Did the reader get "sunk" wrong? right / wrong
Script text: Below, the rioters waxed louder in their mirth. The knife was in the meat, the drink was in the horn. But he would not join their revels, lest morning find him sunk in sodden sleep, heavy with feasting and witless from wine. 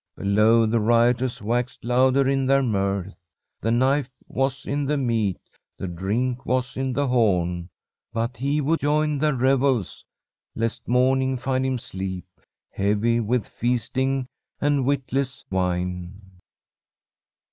wrong